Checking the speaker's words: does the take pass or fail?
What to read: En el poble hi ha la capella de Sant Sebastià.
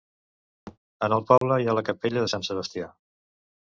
pass